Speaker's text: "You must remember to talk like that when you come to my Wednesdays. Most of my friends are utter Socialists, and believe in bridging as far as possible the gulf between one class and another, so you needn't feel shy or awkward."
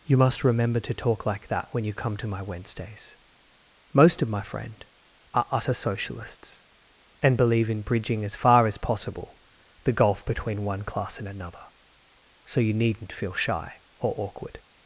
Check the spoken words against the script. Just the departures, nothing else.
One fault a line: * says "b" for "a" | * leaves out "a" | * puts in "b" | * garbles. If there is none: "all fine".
* says "friend" for "friends"